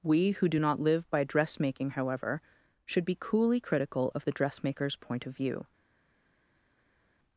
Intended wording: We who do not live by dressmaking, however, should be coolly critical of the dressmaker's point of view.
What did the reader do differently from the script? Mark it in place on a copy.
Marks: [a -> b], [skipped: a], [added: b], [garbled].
We who do not live by dressmaking, however, should be coolly critical of the dressmaker's point of view.